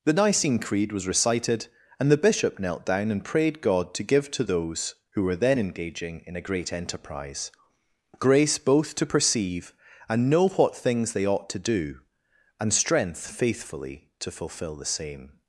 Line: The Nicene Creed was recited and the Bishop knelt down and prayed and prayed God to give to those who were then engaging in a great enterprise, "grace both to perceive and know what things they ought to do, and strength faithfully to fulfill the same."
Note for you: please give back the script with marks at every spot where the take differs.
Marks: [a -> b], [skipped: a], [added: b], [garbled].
The Nicene Creed was recited and the Bishop knelt down and prayed [skipped: and prayed] God to give to those who were then engaging in a great enterprise, "grace both to perceive and know what things they ought to do, and strength faithfully to fulfill the same."